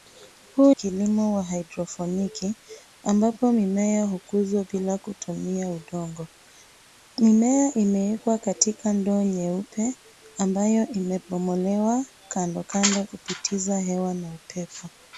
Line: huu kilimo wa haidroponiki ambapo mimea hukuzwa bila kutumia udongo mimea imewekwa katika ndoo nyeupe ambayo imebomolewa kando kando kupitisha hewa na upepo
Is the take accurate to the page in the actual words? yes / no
yes